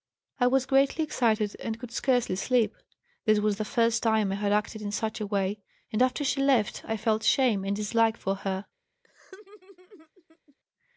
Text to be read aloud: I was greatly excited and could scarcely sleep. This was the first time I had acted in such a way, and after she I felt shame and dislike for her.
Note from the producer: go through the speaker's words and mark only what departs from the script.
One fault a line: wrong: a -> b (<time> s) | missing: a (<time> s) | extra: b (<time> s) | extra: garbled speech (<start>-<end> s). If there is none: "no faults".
extra: left (6.4 s)